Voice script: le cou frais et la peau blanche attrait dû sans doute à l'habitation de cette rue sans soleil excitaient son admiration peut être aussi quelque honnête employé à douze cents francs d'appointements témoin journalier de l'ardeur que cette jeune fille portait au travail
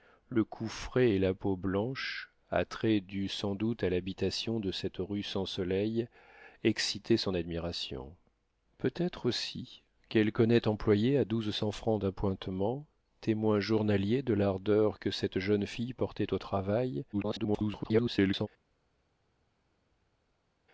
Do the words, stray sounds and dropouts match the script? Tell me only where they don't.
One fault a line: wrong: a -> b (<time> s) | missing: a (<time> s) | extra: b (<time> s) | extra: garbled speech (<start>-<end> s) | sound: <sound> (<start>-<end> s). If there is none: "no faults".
extra: garbled speech (17.1-18.5 s)